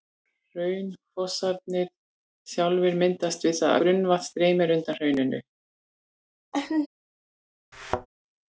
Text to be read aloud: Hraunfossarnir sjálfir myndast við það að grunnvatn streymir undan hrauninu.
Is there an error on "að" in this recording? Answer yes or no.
yes